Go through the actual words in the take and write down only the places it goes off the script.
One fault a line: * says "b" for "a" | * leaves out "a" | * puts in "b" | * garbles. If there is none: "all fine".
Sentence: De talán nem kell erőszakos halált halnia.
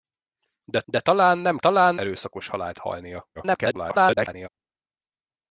* puts in "de"
* says "talán" for "kell"
* garbles